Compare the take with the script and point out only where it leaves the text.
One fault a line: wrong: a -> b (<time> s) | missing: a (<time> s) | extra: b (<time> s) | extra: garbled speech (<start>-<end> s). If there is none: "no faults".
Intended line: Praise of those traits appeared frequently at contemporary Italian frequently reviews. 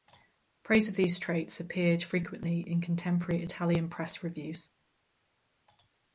wrong: those -> these (0.9 s)
wrong: at -> in (2.6 s)
wrong: frequently -> press (3.9 s)